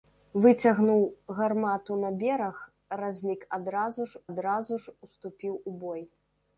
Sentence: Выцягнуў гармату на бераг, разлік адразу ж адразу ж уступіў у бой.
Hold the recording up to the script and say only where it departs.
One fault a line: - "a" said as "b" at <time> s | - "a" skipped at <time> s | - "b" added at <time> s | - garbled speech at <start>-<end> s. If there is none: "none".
none